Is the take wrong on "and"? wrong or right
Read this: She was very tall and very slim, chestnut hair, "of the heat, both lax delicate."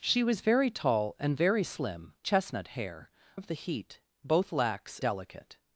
right